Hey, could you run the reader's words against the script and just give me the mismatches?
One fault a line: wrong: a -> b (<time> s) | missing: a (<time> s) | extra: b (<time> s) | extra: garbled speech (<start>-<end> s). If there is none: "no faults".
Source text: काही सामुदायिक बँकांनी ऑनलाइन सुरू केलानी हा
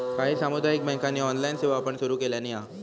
extra: सेवा पण (1.6 s)